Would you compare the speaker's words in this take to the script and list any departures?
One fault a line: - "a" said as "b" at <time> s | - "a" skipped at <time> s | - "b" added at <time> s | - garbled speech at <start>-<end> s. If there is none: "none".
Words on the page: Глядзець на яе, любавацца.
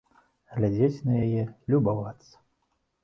none